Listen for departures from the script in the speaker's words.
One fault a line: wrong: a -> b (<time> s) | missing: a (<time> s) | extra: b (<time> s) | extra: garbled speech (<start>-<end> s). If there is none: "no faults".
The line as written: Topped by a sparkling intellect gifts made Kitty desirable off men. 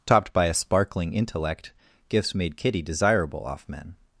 no faults